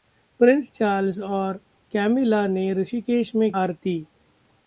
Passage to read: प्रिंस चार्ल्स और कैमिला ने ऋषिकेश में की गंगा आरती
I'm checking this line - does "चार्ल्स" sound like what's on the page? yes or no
yes